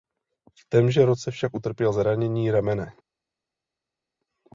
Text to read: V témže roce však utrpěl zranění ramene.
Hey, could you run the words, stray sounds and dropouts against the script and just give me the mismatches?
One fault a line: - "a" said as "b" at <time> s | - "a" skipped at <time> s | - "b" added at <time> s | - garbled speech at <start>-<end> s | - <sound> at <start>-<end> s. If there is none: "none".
none